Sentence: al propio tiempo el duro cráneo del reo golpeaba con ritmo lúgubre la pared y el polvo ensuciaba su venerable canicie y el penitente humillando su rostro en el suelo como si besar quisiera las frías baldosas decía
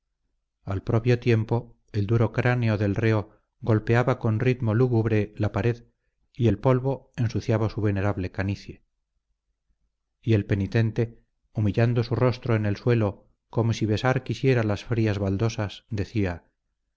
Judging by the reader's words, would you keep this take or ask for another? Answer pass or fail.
pass